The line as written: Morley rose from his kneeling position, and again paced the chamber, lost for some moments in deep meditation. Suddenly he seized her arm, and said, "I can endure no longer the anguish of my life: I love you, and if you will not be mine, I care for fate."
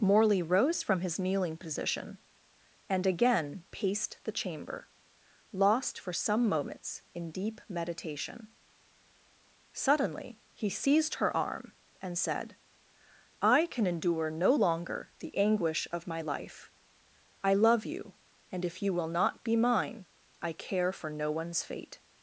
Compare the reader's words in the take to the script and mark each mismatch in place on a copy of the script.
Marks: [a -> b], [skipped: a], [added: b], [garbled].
Morley rose from his kneeling position, and again paced the chamber, lost for some moments in deep meditation. Suddenly he seized her arm, and said, "I can endure no longer the anguish of my life: I love you, and if you will not be mine, I care for [added: no one's] fate."